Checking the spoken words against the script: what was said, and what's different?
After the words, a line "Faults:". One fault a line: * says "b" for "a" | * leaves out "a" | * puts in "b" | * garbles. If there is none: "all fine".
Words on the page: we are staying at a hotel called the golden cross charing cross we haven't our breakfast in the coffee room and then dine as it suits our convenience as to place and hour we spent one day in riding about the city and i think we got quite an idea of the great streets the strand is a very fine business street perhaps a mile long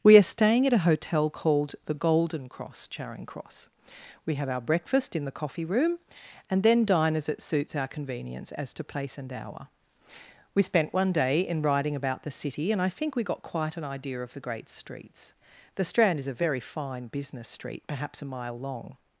we are staying at a hotel called the golden cross charing cross we have our breakfast in the coffee room and then dine as it suits our convenience as to place and hour we spent one day in riding about the city and i think we got quite an idea of the great streets the strand is a very fine business street perhaps a mile long
Faults:
* says "have" for "haven't"